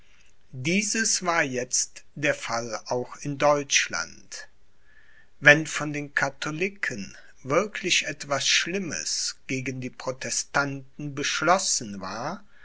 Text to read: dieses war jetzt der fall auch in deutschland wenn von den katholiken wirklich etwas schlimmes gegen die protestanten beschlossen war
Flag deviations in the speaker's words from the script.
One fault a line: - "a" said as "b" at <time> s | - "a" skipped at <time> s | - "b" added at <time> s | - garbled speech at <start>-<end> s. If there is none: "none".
none